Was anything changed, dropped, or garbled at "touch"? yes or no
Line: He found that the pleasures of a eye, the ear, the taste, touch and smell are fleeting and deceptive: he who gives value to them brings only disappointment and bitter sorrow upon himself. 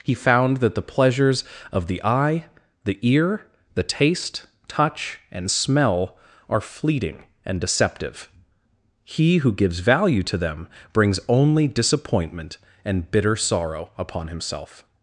no